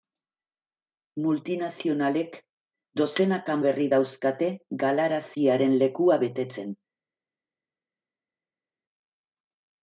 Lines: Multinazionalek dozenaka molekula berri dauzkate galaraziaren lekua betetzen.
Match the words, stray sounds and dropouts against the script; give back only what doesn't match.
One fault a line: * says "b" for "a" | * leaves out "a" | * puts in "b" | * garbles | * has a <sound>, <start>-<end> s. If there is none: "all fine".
* leaves out "molekula"